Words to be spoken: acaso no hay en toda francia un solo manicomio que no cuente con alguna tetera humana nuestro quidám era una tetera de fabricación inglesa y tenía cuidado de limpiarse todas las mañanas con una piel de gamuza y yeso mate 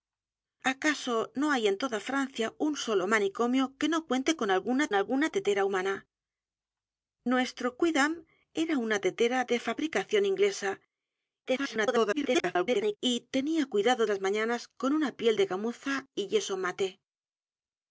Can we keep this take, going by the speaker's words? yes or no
no